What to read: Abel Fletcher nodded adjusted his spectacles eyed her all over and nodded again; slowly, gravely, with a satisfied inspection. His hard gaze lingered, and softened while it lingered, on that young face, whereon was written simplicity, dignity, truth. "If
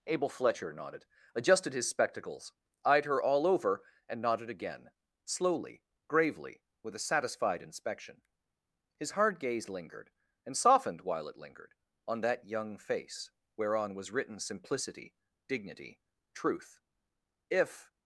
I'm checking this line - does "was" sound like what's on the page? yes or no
yes